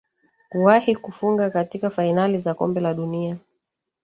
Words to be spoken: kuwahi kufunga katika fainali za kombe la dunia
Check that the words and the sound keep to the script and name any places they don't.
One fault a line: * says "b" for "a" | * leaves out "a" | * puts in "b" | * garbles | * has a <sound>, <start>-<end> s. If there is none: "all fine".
all fine